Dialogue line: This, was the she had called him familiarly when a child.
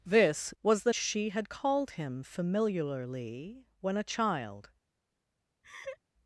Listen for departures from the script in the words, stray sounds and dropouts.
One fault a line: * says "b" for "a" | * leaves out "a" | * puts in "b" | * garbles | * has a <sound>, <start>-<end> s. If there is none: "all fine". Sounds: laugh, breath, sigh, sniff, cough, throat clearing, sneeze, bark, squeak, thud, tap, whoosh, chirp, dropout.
* has a laugh, 5.6-6.0 s